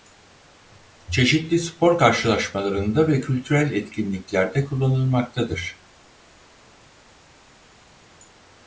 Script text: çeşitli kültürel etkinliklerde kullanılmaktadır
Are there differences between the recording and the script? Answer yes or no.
yes